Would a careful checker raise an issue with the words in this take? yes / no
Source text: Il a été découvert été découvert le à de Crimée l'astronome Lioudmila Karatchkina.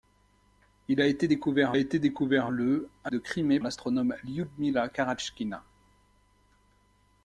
no